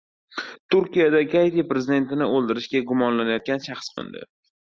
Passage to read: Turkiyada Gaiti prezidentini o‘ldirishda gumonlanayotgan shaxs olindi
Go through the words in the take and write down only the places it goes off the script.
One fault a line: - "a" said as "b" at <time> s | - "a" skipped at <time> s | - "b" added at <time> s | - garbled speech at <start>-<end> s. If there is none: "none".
none